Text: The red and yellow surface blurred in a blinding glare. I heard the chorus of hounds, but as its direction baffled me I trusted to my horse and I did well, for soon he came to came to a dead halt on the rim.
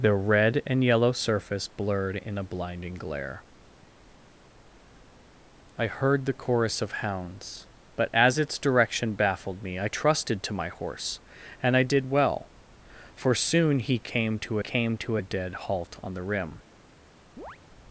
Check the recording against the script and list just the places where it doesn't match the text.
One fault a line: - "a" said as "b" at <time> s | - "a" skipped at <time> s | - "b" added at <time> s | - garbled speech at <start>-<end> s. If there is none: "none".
none